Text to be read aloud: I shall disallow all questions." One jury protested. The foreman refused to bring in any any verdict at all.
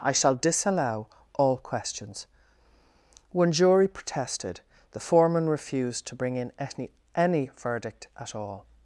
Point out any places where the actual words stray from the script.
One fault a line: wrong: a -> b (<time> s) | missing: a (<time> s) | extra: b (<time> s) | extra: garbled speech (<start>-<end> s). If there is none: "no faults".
no faults